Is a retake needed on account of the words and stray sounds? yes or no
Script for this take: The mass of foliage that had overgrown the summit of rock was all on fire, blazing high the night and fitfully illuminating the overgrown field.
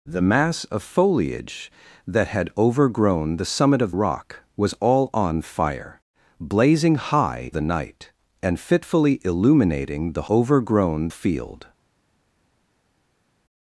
no